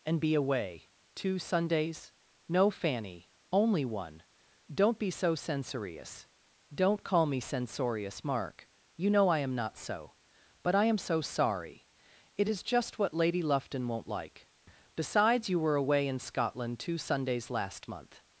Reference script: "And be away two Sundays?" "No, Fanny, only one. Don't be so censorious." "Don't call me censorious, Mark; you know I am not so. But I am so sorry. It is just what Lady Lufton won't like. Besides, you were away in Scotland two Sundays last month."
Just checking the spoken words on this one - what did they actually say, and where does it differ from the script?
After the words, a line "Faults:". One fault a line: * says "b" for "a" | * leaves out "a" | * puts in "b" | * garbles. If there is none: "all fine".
"And be away two Sundays?" "No, Fanny, only one. Don't be so censorious." "Don't call me censorious, Mark; you know I am not so. But I am so sorry. It is just what Lady Lufton won't like. Besides, you were away in Scotland two Sundays last month."
Faults:
all fine